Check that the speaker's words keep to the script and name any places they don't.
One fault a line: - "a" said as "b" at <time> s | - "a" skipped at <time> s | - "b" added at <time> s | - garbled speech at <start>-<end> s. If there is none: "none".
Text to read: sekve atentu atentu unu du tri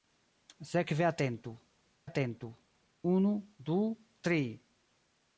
none